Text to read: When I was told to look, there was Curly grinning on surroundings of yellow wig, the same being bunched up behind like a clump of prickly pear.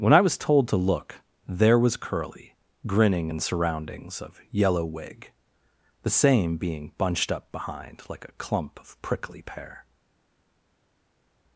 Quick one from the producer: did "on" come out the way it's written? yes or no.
no